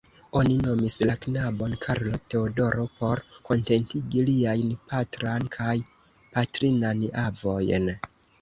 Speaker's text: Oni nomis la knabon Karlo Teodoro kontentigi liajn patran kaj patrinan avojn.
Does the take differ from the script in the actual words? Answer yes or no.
yes